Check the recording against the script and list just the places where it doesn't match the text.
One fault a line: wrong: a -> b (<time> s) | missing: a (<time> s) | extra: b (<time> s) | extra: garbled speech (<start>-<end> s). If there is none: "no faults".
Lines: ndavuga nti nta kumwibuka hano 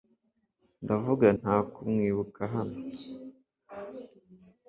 missing: nti (1.3 s)